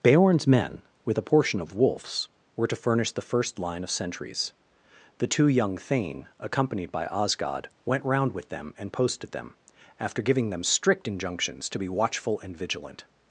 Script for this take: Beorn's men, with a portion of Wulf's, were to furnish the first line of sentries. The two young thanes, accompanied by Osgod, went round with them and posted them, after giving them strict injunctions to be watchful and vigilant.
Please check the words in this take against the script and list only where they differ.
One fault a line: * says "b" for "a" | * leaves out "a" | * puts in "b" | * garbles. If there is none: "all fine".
* says "thane" for "thanes"